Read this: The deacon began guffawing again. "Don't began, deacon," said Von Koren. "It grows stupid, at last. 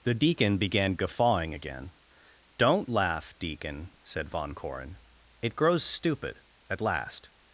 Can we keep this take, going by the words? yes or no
no